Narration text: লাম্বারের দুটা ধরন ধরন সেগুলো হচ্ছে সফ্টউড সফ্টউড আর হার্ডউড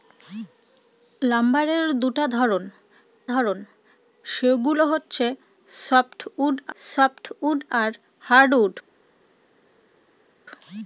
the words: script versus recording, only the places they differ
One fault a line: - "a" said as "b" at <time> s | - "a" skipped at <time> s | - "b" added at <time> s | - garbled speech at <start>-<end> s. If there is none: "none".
none